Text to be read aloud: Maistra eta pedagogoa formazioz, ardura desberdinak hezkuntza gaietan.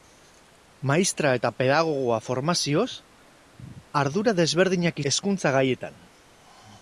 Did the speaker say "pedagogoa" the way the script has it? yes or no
yes